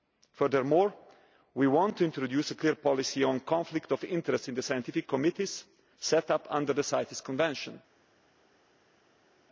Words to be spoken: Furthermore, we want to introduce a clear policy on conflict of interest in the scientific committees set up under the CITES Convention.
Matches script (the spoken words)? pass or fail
pass